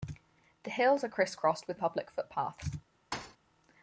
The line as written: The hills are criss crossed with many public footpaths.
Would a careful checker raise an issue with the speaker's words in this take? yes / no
yes